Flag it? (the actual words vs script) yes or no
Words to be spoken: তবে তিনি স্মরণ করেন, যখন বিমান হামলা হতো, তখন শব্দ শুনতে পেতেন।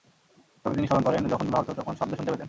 yes